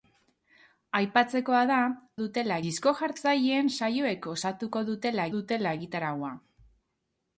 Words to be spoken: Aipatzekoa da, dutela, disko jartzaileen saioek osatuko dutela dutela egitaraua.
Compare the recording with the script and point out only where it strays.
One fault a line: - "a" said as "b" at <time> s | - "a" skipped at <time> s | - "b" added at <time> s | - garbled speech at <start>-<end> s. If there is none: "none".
none